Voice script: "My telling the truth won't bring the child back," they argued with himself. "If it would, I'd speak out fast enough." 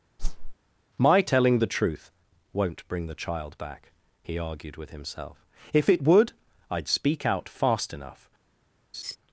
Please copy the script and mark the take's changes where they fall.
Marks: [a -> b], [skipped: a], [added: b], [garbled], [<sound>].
[whoosh] "My telling the truth won't bring the child back," [they -> he] argued with himself. "If it would, I'd speak out fast enough." [laugh]